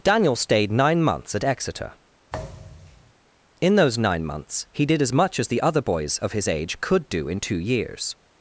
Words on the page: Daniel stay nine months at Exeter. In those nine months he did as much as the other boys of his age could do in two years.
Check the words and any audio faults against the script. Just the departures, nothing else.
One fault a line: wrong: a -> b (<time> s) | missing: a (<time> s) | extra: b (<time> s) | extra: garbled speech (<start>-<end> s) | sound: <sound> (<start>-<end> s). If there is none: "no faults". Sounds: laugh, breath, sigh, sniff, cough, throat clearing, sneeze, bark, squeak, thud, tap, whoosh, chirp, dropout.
wrong: stay -> stayed (0.3 s)
sound: thud (2.3-3.1 s)